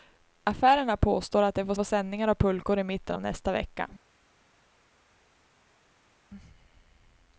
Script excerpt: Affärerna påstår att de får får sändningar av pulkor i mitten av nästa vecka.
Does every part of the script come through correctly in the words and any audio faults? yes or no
yes